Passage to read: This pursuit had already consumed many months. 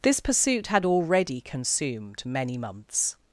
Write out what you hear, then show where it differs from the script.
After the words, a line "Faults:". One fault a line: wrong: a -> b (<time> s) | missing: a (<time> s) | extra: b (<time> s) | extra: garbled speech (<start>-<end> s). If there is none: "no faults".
This pursuit had already consumed many months.
Faults:
no faults